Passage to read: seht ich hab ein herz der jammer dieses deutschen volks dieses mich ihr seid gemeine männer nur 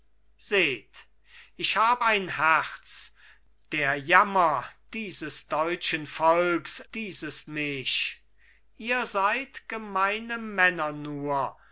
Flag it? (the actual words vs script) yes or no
no